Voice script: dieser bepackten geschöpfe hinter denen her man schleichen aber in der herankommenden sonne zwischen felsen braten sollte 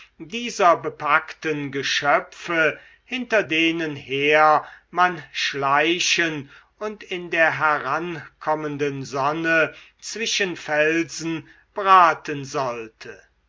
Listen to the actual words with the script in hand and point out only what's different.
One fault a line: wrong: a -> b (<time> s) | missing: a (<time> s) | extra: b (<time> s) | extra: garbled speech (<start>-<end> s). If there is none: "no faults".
wrong: aber -> und (6.8 s)